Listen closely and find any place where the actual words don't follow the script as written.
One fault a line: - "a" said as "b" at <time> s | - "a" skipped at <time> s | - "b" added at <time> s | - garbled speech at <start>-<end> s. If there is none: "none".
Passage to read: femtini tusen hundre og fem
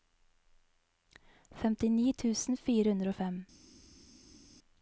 - "fire" added at 2.7 s